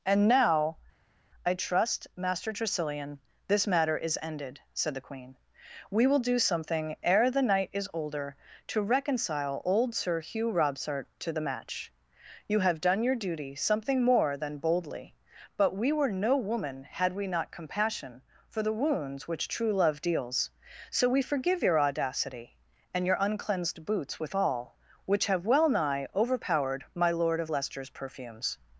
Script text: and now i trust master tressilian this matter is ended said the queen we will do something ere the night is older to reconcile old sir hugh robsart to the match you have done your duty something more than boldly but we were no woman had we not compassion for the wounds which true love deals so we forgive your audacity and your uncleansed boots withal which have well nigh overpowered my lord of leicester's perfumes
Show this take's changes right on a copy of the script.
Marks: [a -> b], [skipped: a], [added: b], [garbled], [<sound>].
and now i trust master tressilian this matter is ended said the queen we will do something ere the night is older to reconcile old sir hugh robsart to the match you have done your duty something more than boldly but we were no woman had we not compassion for the wounds which true love deals so we forgive your audacity and your uncleansed boots withal which have well nigh overpowered my lord of leicester's perfumes